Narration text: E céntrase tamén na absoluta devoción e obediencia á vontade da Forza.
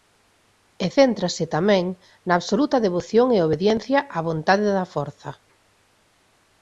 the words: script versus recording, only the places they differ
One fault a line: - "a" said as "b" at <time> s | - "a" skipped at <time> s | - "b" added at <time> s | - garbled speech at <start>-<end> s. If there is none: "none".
none